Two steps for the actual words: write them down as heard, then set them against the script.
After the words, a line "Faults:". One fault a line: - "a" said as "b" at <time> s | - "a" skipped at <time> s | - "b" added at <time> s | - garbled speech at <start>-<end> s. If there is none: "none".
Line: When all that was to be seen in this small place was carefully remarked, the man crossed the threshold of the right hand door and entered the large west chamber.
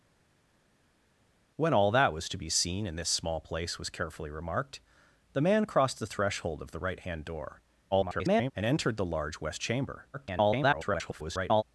When all that was to be seen in this small place was carefully remarked, the man crossed the threshold of the right hand door [garbled] and entered the large west chamber. [garbled]
Faults:
- garbled speech at 7.9-8.5 s
- garbled speech at 10.1-11.6 s